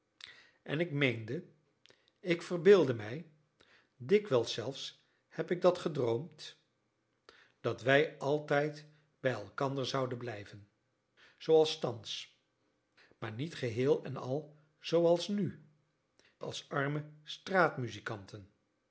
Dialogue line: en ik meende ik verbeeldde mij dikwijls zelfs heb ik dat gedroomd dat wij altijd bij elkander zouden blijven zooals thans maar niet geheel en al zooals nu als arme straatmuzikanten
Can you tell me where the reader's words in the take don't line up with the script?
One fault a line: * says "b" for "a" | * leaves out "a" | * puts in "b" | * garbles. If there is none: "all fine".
all fine